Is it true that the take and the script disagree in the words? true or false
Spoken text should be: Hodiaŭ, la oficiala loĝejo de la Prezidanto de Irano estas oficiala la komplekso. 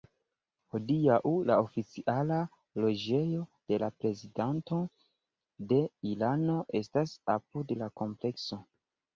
true